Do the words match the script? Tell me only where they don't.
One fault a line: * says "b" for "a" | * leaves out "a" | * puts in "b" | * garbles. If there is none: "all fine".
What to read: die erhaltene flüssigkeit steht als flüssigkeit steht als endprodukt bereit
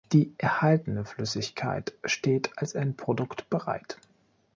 * leaves out "flüssigkeit steht als"